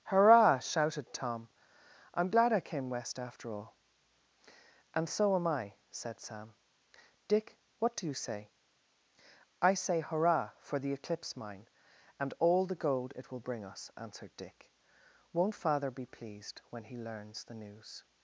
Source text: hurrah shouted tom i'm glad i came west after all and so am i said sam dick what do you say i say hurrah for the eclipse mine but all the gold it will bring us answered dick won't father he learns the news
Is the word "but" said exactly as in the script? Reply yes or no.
no